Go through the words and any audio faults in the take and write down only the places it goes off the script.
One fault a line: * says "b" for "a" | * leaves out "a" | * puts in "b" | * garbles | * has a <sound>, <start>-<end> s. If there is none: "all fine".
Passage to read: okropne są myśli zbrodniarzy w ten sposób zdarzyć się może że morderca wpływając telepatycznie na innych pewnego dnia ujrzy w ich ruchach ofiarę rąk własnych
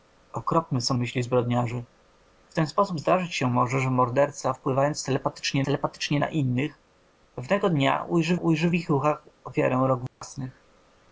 * puts in "telepatycznie"
* puts in "ujrzy"
* has a dropout, 10.1-10.2 s